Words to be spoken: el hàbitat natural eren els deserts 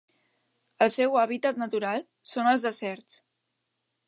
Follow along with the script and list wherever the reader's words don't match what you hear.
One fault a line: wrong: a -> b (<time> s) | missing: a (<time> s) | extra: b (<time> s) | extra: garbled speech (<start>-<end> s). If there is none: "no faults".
extra: seu (0.9 s)
wrong: eren -> són (2.3 s)